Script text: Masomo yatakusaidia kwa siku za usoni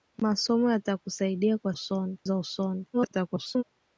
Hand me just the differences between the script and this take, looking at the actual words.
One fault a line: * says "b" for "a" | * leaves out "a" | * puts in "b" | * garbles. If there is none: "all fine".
* says "usoni" for "siku"
* garbles